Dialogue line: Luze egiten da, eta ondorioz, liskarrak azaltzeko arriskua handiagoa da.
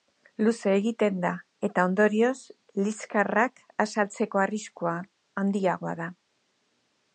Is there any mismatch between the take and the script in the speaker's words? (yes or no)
no